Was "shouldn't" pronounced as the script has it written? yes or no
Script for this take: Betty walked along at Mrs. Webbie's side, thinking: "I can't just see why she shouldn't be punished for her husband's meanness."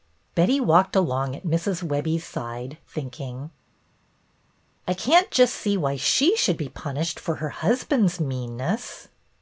no